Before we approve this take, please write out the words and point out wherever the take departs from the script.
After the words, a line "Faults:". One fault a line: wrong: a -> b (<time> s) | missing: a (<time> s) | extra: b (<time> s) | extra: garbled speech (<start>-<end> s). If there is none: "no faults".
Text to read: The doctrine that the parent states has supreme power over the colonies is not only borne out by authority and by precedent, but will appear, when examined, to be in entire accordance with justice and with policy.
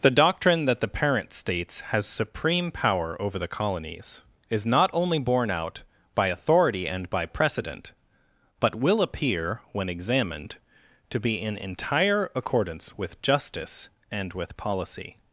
The doctrine that the parent states has supreme power over the colonies is not only borne out by authority and by precedent, but will appear, when examined, to be in entire accordance with justice and with policy.
Faults:
no faults